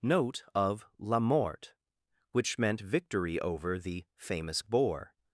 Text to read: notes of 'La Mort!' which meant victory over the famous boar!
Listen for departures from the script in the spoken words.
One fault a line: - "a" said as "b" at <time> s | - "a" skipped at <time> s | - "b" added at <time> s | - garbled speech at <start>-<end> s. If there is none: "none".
- "notes" said as "note" at 0.0 s